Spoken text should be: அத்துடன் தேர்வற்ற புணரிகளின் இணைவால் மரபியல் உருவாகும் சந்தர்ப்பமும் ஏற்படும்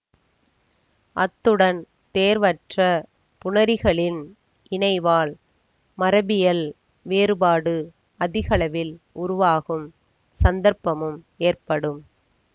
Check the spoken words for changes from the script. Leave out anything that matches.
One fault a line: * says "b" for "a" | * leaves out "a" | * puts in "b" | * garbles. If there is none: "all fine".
* puts in "வேறுபாடு அதிகளவில்"